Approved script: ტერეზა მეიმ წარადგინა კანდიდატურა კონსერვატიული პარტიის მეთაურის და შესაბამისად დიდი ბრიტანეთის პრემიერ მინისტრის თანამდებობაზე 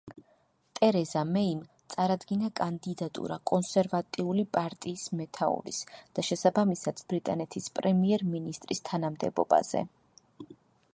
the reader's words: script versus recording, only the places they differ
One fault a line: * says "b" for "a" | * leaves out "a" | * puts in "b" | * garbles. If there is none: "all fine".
* leaves out "დიდი"